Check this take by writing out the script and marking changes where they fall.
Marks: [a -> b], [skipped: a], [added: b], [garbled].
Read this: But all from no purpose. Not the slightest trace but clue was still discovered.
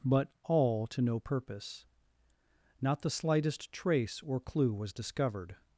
But all [from -> to] no purpose. Not the slightest trace [but -> or] clue was [skipped: still] discovered.